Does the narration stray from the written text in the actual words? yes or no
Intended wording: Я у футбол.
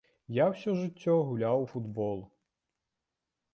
yes